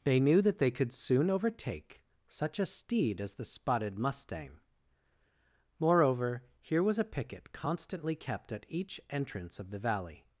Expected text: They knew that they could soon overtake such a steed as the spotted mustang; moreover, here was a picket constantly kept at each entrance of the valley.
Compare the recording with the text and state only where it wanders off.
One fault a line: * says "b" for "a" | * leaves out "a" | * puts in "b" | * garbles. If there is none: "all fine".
all fine